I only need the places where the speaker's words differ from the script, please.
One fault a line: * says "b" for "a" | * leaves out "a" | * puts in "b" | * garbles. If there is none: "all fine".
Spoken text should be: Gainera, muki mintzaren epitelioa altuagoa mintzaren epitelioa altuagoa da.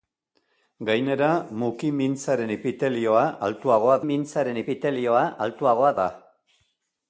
all fine